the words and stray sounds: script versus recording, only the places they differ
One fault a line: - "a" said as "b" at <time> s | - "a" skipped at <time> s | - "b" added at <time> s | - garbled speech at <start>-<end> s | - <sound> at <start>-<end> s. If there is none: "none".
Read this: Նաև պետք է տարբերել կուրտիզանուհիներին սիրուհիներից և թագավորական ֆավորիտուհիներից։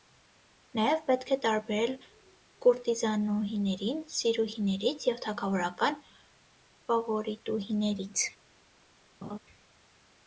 - laugh at 9.2-9.4 s